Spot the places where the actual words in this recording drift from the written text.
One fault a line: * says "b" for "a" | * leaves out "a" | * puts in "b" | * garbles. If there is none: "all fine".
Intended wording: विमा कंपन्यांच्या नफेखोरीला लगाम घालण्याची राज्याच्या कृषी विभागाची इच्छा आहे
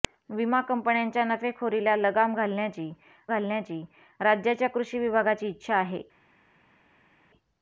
* puts in "घालण्याची"